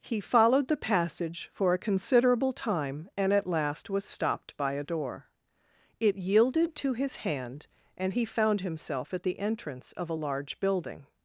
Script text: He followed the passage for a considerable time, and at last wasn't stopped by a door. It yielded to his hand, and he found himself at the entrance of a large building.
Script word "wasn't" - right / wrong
wrong